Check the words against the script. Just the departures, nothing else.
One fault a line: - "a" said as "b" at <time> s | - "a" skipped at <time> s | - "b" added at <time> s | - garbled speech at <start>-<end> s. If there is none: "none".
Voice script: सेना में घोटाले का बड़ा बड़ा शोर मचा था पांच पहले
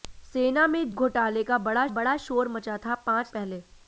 none